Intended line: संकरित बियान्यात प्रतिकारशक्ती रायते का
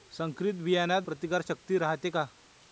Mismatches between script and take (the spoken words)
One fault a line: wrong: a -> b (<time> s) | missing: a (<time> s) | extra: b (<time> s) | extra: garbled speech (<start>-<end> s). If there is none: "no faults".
no faults